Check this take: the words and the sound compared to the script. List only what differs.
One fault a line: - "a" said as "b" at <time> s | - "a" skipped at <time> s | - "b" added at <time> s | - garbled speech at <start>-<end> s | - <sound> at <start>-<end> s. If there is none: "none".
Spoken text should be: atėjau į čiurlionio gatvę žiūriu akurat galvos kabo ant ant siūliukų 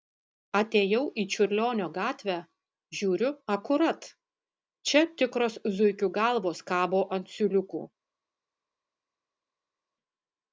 - "čia tikros zuikių" added at 4.9 s
- "ant" skipped at 7.3 s